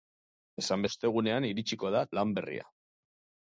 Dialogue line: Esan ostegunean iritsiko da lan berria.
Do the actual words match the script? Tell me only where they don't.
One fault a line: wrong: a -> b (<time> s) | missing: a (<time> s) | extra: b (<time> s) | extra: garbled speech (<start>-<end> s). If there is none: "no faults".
no faults